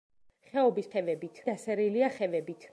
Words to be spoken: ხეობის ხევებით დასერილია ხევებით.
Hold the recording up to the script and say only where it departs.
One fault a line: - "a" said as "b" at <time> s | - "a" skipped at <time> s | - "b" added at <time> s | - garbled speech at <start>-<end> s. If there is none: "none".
none